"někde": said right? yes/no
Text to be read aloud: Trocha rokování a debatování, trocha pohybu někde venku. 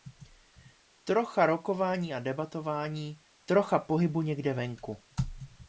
yes